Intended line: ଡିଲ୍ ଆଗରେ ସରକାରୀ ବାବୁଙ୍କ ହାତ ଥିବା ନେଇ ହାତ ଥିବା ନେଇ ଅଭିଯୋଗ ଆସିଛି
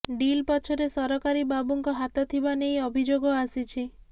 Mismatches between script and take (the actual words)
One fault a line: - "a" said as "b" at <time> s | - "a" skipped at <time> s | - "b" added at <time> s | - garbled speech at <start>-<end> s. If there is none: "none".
- "ଆଗରେ" said as "ପଛରେ" at 0.5 s
- "ହାତ ଥିବା ନେଇ" skipped at 2.8 s